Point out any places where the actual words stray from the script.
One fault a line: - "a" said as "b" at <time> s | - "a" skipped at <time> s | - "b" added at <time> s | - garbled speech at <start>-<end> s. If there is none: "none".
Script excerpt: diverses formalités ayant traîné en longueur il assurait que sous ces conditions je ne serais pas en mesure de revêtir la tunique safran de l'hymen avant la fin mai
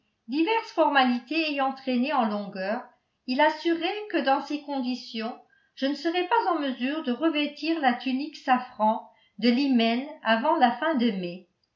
- "sous" said as "dans" at 4.2 s
- "de" added at 10.9 s